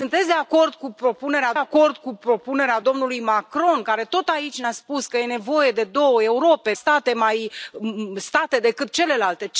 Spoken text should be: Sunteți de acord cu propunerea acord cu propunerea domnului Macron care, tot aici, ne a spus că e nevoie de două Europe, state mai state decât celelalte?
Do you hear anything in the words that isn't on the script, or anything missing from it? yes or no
no